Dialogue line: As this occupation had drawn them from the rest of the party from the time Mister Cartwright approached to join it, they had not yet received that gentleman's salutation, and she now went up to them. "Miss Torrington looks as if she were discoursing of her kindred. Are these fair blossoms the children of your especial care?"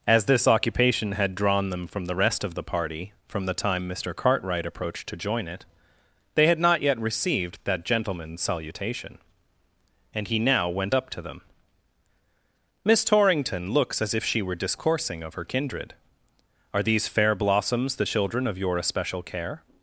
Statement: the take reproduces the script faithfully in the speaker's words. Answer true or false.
false